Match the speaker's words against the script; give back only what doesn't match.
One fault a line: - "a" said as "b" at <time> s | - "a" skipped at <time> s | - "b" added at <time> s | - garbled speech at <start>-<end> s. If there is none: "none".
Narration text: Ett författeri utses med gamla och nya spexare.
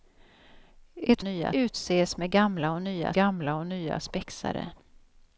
- "författeri" said as "nya" at 1.2 s
- "gamla och nya" added at 3.1 s